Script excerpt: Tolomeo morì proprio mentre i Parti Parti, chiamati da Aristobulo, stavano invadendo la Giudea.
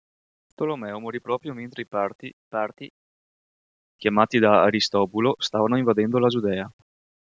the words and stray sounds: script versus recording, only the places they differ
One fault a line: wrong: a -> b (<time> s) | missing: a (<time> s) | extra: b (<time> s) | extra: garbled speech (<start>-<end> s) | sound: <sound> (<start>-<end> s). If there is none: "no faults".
no faults